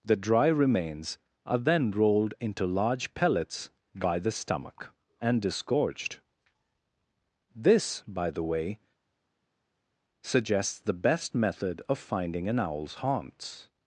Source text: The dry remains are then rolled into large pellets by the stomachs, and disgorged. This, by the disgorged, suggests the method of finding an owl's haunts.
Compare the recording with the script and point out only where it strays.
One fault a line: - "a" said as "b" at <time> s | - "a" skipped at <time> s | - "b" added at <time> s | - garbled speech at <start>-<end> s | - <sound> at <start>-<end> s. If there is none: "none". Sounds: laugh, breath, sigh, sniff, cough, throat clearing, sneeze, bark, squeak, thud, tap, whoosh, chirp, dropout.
- "stomachs" said as "stomach" at 4.3 s
- "disgorged" said as "way" at 8.4 s
- "best" added at 10.9 s